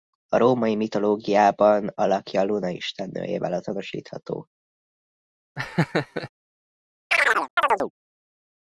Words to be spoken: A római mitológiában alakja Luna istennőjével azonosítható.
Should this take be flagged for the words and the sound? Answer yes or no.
yes